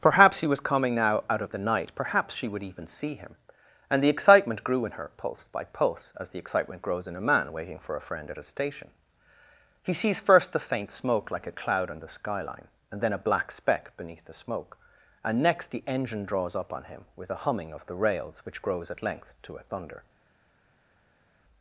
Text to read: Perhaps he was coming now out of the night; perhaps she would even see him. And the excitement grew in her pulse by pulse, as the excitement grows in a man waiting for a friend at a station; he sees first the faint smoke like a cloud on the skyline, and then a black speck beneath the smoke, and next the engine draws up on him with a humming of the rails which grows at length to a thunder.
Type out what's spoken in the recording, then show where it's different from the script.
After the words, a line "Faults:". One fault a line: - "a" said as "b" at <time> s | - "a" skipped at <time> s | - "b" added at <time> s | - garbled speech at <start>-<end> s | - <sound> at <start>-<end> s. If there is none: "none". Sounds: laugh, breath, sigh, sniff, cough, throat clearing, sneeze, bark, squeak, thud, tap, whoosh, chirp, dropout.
Perhaps he was coming now out of the night; perhaps she would even see him. And the excitement grew in her pulse by pulse, as the excitement grows in a man waiting for a friend at a station; he sees first the faint smoke like a cloud on the skyline, and then a black speck beneath the smoke, and next the engine draws up on him with a humming of the rails which grows at length to a thunder.
Faults:
none